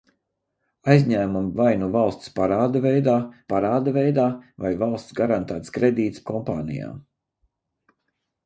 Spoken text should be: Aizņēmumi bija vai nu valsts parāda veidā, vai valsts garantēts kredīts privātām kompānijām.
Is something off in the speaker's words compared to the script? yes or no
yes